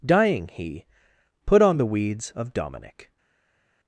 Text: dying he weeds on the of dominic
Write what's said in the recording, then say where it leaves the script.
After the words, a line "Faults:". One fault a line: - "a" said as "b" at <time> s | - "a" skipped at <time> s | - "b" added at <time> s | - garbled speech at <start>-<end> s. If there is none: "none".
dying he put on the weeds of dominic
Faults:
- "weeds" said as "put" at 1.4 s
- "weeds" added at 1.9 s